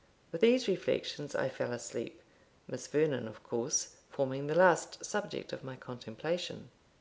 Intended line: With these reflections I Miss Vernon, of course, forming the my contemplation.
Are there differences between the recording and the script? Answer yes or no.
yes